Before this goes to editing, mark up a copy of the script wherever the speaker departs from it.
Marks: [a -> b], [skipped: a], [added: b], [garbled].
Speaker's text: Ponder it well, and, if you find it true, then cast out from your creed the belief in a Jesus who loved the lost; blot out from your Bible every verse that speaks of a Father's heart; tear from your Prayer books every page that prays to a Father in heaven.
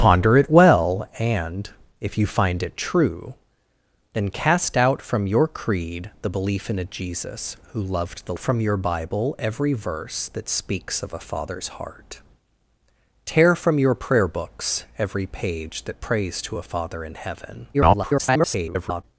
Ponder it well, and, if you find it true, then cast out from your creed the belief in a Jesus who loved the [skipped: lost; blot out] from your Bible every verse that speaks of a Father's heart; tear from your Prayer books every page that prays to a Father in heaven. [garbled]